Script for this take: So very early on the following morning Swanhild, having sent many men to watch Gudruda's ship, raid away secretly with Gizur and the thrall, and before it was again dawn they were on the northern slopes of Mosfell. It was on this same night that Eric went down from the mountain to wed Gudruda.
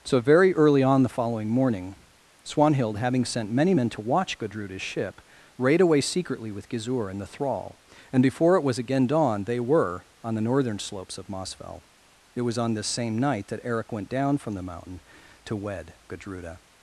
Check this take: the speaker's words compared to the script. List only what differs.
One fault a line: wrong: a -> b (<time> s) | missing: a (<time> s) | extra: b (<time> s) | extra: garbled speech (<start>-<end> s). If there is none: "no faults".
no faults